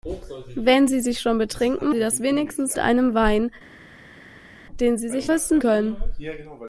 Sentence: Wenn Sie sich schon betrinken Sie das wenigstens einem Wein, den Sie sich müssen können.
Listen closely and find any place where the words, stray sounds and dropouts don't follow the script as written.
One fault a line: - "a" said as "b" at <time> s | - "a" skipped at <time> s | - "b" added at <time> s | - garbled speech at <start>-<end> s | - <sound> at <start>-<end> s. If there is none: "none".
none